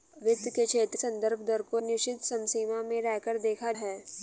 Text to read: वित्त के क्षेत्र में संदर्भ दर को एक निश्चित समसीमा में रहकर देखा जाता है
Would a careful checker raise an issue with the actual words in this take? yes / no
yes